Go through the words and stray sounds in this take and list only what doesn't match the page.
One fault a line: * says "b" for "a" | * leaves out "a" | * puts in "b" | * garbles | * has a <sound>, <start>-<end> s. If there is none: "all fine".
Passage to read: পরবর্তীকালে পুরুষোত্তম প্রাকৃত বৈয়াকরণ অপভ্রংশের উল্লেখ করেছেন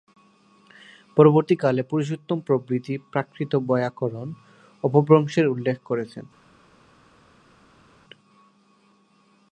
* puts in "প্রভৃতি"